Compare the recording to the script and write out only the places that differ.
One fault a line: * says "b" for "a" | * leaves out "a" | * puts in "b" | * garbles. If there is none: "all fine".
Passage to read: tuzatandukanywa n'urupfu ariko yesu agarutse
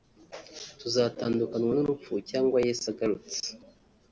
* says "cyangwa" for "ariko"